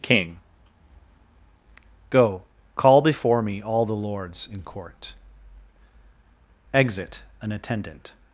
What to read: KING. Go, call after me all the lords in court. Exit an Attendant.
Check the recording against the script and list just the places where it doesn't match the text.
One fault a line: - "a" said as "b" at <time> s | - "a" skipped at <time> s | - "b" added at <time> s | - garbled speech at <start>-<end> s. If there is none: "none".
- "after" said as "before" at 3.0 s